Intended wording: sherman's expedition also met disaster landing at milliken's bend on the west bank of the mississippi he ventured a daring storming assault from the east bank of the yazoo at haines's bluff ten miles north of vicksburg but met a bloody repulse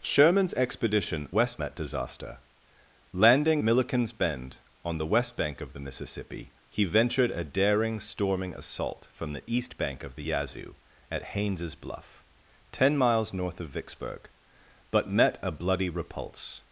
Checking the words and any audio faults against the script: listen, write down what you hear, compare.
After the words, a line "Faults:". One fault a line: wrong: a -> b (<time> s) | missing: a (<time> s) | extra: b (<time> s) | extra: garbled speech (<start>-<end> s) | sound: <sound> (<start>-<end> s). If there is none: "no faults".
sherman's expedition west met disaster landing milliken's bend on the west bank of the mississippi he ventured a daring storming assault from the east bank of the yazoo at haines's bluff ten miles north of vicksburg but met a bloody repulse
Faults:
wrong: also -> west (1.3 s)
missing: at (3.6 s)